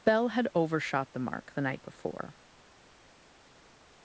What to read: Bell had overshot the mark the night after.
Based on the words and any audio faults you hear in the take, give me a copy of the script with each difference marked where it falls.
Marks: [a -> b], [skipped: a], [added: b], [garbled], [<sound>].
Bell had overshot the mark the night [after. -> before]